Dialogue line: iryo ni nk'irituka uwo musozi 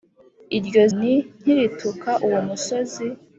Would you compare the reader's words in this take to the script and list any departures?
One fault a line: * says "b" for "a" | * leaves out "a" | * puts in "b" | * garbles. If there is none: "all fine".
all fine